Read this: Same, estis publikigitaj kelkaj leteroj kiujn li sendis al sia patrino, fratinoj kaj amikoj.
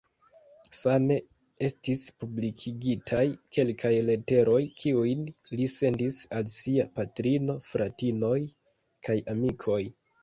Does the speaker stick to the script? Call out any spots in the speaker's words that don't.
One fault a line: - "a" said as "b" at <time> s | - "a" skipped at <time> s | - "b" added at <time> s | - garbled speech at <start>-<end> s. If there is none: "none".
none